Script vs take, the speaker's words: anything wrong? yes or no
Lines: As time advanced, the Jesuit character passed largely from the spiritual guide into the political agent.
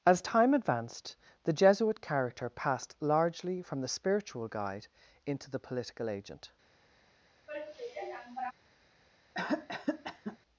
no